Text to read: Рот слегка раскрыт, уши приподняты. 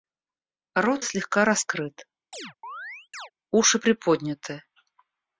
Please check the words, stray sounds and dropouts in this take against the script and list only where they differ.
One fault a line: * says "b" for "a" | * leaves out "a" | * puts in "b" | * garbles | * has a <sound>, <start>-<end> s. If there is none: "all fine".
* has a chirp, 2.3-3.3 s